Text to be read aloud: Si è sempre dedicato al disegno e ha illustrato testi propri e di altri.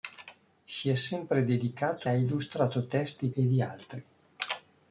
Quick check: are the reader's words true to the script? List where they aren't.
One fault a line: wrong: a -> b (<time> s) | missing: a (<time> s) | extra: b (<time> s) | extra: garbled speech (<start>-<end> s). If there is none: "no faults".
missing: al disegno e (2.1 s)
missing: propri (3.3 s)